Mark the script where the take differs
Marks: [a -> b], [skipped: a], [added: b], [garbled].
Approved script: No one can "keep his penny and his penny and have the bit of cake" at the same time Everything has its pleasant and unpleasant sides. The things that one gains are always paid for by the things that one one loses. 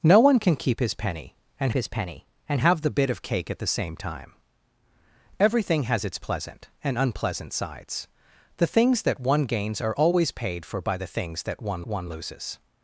No one can "keep his penny and his penny and have the bit of cake" at the same time Everything has its pleasant and unpleasant sides. The things that one gains are always paid for by the things that one one loses.